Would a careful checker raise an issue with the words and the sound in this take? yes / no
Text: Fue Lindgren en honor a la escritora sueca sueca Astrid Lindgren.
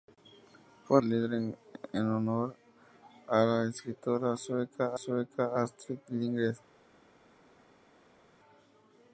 no